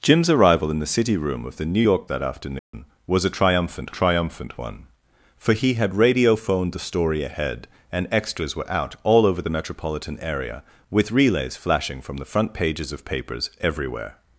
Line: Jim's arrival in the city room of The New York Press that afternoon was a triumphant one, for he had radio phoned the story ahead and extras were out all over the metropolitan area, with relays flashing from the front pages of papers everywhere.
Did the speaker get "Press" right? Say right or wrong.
wrong